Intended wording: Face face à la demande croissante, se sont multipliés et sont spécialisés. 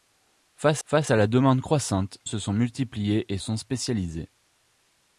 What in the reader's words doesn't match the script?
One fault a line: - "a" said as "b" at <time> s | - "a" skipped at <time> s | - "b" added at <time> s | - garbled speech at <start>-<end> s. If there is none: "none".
none